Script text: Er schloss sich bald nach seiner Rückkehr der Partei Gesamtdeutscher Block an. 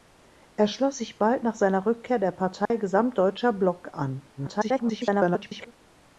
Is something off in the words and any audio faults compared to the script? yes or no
yes